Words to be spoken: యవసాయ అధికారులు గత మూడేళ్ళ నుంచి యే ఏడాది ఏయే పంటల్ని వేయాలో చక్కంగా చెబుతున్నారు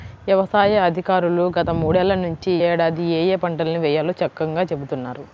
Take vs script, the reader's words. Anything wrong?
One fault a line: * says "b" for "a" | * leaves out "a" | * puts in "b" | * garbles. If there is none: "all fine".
* leaves out "యే"